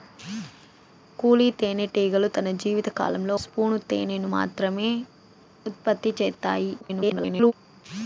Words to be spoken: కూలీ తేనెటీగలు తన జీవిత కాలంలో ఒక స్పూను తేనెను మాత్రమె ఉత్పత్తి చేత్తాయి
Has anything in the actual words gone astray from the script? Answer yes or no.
yes